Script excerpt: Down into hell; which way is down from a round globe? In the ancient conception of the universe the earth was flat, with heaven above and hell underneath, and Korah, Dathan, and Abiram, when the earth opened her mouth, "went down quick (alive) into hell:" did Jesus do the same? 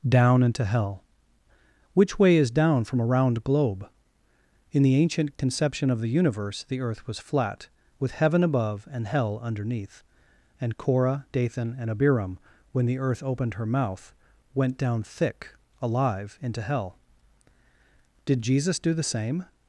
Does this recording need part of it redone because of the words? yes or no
yes